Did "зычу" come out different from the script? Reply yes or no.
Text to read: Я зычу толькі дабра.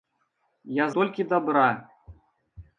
yes